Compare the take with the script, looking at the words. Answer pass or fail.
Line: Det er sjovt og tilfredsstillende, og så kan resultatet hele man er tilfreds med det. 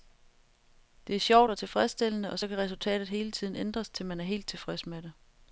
fail